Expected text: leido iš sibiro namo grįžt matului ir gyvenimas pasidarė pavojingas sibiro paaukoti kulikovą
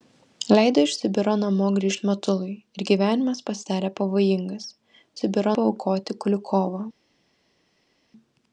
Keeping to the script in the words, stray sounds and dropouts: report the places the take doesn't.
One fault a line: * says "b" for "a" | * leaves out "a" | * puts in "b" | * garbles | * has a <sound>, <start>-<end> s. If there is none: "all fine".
all fine